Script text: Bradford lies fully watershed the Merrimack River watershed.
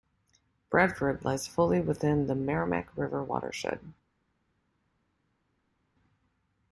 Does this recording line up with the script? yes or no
no